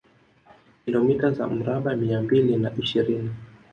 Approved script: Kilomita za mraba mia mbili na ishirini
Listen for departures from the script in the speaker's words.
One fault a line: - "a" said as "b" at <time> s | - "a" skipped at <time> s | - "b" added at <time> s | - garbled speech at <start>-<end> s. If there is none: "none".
none